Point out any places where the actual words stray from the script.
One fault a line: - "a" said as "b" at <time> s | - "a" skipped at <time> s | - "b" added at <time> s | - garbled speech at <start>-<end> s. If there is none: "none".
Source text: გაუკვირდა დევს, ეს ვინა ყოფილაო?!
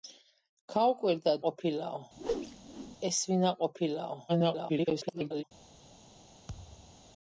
- "დევს" said as "ყოფილაო" at 1.5 s
- garbled speech at 4.3-5.4 s